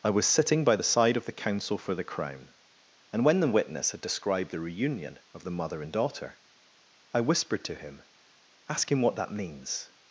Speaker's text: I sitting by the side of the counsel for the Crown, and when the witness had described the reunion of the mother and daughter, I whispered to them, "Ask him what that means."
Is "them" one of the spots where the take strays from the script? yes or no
yes